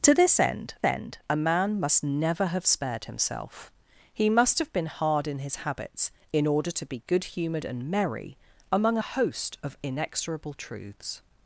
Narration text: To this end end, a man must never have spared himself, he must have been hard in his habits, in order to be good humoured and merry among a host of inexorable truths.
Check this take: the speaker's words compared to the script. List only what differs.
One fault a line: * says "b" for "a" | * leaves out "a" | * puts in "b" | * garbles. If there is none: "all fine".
all fine